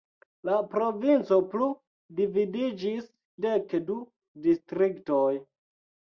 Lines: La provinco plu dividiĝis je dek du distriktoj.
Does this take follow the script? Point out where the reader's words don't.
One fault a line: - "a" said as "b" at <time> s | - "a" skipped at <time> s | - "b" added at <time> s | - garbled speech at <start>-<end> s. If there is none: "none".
- "je" skipped at 3.0 s